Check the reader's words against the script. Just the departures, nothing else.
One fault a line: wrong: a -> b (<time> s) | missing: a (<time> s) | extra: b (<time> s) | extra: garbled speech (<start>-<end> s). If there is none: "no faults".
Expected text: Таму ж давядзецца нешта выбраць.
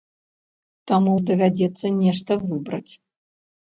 no faults